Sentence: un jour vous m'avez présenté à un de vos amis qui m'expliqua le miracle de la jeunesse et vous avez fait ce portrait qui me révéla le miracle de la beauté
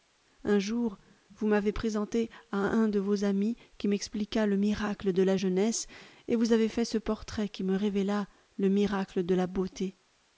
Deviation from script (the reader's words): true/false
false